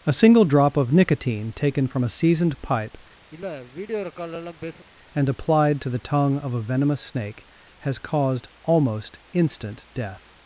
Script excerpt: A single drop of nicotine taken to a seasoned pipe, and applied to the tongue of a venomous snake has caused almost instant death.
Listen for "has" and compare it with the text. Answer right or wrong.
right